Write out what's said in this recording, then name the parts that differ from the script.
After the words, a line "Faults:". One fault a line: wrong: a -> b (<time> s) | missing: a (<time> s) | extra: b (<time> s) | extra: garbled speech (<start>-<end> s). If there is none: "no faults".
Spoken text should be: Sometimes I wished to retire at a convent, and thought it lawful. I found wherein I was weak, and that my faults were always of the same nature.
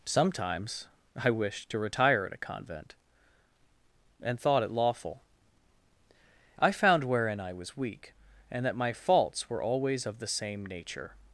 Sometimes I wished to retire at a convent, and thought it lawful. I found wherein I was weak, and that my faults were always of the same nature.
Faults:
no faults